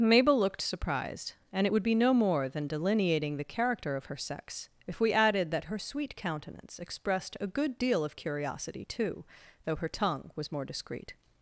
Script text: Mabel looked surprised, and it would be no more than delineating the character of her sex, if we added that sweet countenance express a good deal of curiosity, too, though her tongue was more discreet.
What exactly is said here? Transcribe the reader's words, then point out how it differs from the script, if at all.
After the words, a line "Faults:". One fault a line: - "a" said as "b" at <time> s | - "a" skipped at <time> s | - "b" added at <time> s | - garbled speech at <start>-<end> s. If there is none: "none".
Mabel looked surprised, and it would be no more than delineating the character of her sex, if we added that her sweet countenance expressed a good deal of curiosity, too, though her tongue was more discreet.
Faults:
- "her" added at 5.6 s
- "express" said as "expressed" at 6.8 s